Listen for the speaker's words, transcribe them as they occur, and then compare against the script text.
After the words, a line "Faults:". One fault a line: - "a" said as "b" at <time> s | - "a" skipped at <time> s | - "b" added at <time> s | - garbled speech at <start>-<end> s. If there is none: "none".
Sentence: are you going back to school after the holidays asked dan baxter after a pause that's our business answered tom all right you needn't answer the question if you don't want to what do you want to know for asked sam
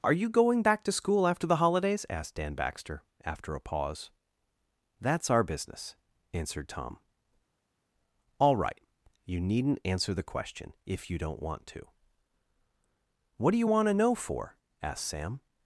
are you going back to school after the holidays asked dan baxter after a pause that's our business answered tom all right you needn't answer the question if you don't want to what do you want to know for asked sam
Faults:
none